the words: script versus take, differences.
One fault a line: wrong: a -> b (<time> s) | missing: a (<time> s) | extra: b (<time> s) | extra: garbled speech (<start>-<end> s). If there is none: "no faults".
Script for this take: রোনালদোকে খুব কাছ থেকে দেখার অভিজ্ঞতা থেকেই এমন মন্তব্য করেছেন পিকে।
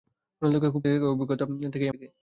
missing: কাছ থেকে (0.8 s)
missing: এমন মন্তব্য করেছেন (1.9 s)